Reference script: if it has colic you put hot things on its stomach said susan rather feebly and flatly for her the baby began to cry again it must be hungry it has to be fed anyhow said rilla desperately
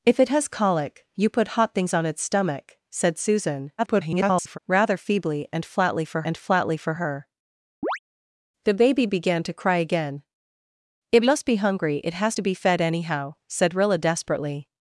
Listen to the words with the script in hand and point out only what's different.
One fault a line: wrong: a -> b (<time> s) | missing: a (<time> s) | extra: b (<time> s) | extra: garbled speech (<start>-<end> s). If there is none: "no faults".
extra: garbled speech (3.8-4.6 s)
extra: and flatly for (6.2 s)